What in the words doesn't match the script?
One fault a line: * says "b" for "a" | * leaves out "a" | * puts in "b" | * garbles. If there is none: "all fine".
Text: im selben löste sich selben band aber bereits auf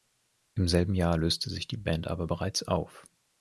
* puts in "jahr"
* says "die" for "selben"